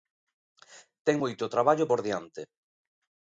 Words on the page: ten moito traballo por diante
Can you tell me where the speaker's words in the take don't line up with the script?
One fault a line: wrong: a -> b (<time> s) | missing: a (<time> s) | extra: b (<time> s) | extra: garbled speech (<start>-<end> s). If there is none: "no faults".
no faults